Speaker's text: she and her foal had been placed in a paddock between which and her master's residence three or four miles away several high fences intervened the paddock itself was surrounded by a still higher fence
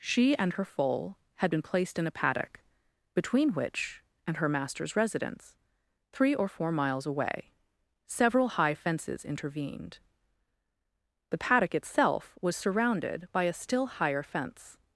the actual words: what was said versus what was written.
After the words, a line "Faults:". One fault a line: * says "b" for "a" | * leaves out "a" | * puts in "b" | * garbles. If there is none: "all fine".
she and her foal had been placed in a paddock between which and her master's residence three or four miles away several high fences intervened the paddock itself was surrounded by a still higher fence
Faults:
all fine